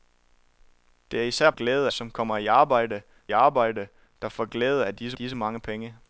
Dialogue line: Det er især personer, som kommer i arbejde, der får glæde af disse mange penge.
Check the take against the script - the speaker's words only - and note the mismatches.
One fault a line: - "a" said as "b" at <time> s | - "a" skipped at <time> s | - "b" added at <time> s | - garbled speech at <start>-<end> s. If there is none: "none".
- "personer" said as "glæde" at 1.5 s
- "arbejde" added at 3.3 s
- "disse" added at 5.1 s